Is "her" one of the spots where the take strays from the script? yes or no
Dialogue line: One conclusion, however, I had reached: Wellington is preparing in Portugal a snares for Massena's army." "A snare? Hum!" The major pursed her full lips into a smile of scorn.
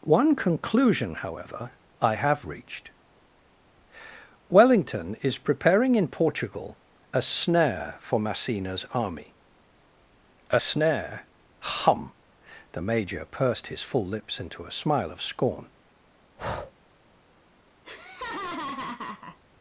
yes